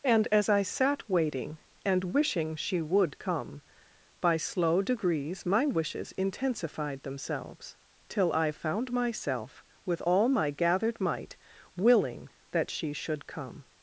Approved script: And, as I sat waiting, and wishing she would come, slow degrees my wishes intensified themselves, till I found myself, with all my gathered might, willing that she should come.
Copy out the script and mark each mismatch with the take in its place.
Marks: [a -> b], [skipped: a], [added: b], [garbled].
And, as I sat waiting, and wishing she would come, [added: by] slow degrees my wishes intensified themselves, till I found myself, with all my gathered might, willing that she should come.